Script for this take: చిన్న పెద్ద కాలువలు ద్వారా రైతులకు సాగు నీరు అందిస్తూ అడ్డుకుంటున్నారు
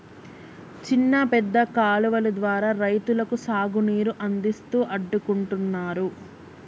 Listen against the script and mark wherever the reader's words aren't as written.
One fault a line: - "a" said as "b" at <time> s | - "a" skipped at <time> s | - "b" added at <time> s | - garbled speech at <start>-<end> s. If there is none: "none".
none